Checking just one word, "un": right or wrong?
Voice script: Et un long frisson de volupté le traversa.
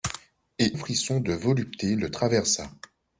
wrong